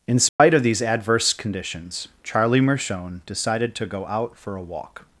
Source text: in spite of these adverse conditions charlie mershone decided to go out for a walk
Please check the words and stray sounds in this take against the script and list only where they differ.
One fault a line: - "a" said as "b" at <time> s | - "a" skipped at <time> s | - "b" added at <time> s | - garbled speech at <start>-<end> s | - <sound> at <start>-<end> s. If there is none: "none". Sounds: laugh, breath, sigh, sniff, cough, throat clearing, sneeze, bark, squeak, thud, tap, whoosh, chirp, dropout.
- dropout at 0.3-0.4 s